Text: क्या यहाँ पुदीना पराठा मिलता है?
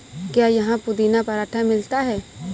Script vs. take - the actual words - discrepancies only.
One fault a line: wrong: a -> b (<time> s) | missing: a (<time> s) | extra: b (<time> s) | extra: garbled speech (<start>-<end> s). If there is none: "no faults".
no faults